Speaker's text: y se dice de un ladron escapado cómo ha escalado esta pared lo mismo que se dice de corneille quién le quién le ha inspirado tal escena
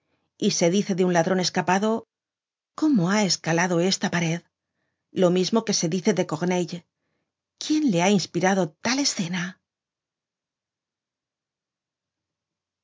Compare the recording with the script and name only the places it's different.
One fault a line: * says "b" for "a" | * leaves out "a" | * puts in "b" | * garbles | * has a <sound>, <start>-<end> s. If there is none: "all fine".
* leaves out "quién le"